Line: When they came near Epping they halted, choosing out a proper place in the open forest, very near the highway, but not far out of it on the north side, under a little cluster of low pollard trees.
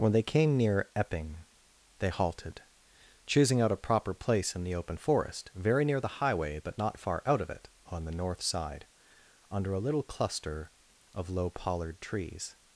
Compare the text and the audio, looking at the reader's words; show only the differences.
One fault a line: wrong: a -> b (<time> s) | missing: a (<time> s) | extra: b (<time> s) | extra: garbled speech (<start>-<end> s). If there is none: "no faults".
no faults